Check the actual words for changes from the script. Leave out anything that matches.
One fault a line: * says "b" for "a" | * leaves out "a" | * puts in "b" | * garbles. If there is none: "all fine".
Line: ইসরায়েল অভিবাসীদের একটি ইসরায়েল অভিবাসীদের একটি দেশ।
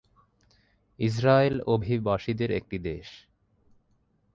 * leaves out "ইসরায়েল অভিবাসীদের একটি"